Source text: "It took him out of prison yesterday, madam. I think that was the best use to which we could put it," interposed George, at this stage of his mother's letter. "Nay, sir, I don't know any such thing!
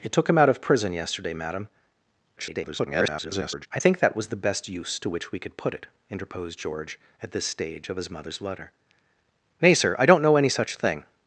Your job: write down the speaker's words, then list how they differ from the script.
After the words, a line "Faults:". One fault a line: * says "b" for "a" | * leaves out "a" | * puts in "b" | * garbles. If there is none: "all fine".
"It took him out of prison yesterday, madam. [garbled] I think that was the best use to which we could put it," interposed George, at this stage of his mother's letter. "Nay, sir, I don't know any such thing!
Faults:
* garbles